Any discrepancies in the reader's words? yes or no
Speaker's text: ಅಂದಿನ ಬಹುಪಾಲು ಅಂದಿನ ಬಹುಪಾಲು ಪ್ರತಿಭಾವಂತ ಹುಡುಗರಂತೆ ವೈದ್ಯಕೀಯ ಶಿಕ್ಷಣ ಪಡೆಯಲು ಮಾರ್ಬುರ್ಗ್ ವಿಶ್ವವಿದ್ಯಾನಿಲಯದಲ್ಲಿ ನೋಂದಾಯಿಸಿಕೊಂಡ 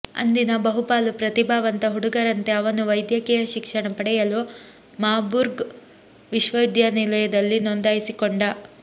yes